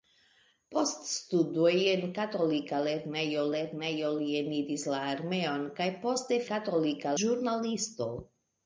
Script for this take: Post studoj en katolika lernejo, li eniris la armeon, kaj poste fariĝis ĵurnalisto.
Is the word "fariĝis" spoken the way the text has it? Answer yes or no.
no